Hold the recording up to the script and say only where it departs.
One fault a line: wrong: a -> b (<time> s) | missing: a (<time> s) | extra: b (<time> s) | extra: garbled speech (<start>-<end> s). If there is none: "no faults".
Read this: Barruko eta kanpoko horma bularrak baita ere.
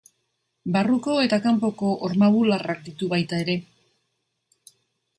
extra: ditu (2.9 s)